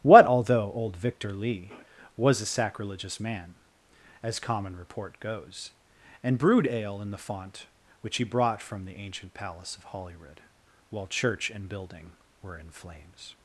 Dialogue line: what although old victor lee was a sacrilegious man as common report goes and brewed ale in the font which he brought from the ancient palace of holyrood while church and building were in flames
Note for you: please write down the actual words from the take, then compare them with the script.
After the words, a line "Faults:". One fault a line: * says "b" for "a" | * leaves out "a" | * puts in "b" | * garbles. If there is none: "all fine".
what although old victor lee was a sacrilegious man as common report goes and brewed ale in the font which he brought from the ancient palace of holyrood while church and building were in flames
Faults:
all fine